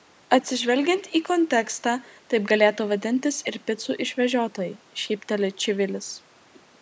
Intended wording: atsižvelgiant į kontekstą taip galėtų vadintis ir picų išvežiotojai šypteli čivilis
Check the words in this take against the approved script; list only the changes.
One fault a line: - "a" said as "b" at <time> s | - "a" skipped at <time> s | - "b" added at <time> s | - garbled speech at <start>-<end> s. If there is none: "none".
none